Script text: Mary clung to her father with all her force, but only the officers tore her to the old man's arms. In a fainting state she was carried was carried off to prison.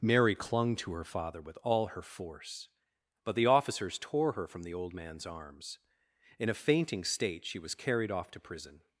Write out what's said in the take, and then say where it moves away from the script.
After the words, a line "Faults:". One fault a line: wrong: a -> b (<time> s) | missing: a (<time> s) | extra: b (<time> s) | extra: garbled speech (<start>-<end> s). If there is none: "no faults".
Mary clung to her father with all her force, but the officers tore her from the old man's arms. In a fainting state she was carried off to prison.
Faults:
missing: only (3.4 s)
wrong: to -> from (4.5 s)
missing: was carried (8.1 s)